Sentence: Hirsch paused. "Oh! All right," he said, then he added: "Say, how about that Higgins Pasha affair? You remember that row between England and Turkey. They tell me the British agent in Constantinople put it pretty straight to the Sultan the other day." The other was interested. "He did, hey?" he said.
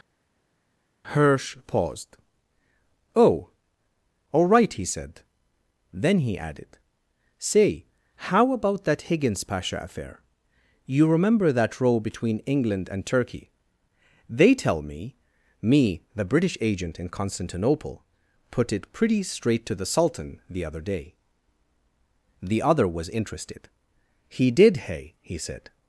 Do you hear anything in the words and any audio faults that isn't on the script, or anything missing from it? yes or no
yes